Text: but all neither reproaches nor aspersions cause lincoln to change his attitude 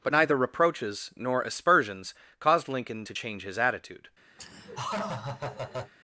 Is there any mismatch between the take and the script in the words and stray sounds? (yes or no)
yes